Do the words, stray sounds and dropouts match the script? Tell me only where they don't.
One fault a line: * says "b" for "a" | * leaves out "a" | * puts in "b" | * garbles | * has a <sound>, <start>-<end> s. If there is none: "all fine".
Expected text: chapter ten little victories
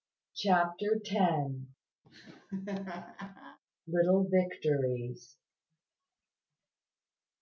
* has a laugh, 2.0-3.6 s